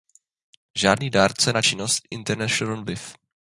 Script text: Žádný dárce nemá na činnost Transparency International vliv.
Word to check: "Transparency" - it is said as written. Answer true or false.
false